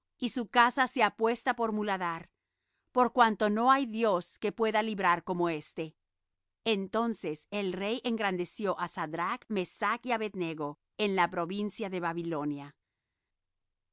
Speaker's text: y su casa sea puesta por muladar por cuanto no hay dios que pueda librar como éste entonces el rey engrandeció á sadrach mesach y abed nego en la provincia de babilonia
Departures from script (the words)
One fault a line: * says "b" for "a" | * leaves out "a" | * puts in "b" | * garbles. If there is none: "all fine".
all fine